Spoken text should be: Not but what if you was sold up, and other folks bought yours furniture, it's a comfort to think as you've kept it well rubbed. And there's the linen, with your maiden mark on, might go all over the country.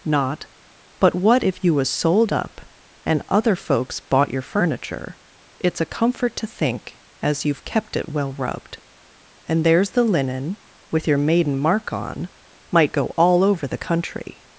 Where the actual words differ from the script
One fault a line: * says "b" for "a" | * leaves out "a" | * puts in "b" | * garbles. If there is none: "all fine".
* says "your" for "yours"